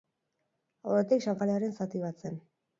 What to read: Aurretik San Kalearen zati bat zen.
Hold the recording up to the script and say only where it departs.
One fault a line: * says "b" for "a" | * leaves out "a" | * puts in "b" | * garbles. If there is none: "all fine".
all fine